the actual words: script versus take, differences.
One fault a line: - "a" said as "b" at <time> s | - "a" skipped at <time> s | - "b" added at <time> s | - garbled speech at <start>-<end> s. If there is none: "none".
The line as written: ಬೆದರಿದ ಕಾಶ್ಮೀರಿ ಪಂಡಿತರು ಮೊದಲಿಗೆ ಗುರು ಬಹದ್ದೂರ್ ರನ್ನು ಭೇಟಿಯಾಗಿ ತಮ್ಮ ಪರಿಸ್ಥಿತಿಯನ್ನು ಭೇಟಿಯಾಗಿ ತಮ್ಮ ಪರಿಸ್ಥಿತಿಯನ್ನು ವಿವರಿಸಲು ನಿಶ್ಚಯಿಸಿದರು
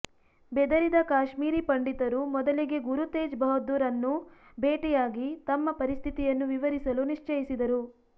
- "ತೇಜ್" added at 3.1 s
- "ಭೇಟಿಯಾಗಿ ತಮ್ಮ ಪರಿಸ್ಥಿತಿಯನ್ನು" skipped at 6.5 s